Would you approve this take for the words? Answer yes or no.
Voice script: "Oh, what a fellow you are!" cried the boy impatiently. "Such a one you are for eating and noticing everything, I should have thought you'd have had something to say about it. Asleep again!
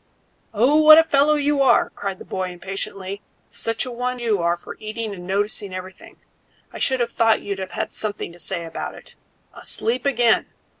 yes